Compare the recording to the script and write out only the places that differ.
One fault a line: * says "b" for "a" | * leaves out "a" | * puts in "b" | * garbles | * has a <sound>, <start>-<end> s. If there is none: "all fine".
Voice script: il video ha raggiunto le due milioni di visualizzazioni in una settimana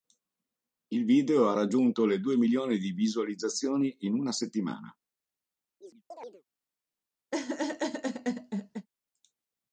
* has a chirp, 5.8-6.4 s
* has a laugh, 7.3-8.9 s